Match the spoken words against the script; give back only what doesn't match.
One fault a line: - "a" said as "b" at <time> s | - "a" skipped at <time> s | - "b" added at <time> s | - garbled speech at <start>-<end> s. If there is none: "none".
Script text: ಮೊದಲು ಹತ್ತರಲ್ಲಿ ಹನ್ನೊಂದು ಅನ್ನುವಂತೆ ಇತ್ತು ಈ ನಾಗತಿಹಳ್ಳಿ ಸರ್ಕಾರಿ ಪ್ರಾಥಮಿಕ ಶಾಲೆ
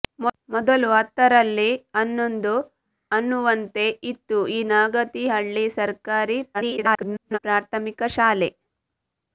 - garbled speech at 6.5-7.4 s